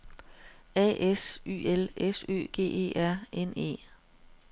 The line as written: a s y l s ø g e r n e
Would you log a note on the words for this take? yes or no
no